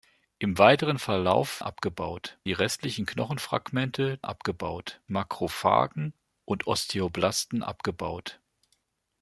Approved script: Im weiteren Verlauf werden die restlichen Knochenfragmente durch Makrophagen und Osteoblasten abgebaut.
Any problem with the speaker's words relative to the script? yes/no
yes